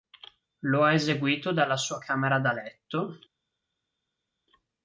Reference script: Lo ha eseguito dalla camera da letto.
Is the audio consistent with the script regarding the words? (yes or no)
no